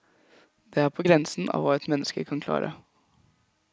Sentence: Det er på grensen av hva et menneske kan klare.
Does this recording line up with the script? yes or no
yes